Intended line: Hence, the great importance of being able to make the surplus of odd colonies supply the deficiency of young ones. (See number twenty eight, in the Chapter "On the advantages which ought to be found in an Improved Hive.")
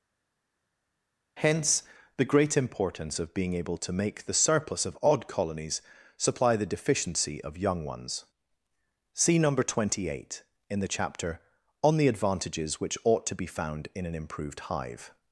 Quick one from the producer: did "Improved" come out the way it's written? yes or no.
yes